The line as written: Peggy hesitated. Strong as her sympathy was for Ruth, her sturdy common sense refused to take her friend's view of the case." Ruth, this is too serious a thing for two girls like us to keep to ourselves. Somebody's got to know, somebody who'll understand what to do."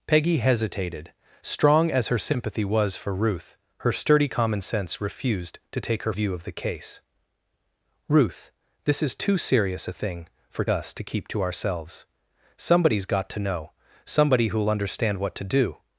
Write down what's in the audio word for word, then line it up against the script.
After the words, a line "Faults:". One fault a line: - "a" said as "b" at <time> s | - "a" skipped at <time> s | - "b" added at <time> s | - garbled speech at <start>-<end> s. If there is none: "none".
Peggy hesitated. Strong as her sympathy was for Ruth, her sturdy common sense refused to take her view of the case." Ruth, this is too serious a thing for us to keep to ourselves. Somebody's got to know, somebody who'll understand what to do."
Faults:
- "friend's" skipped at 6.1 s
- "two girls like" skipped at 10.6 s